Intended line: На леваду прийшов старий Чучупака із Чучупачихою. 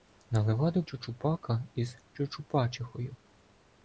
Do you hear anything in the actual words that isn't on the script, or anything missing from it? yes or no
yes